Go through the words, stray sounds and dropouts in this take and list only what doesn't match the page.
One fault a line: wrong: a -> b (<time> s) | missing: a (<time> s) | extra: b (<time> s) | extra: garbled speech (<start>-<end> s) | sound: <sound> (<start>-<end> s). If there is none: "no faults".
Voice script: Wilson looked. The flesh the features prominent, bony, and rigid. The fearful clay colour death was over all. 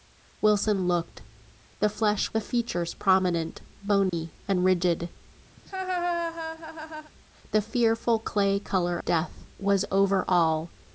sound: dropout (4.1-4.1 s)
sound: laugh (5.6-7.1 s)